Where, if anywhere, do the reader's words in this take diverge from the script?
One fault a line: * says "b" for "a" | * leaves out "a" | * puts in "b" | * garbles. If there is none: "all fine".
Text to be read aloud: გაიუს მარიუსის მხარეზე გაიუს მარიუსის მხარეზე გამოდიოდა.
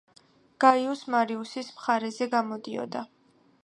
* leaves out "გაიუს მარიუსის მხარეზე"